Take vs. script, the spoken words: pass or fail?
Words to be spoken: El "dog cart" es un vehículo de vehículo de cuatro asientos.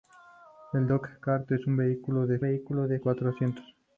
pass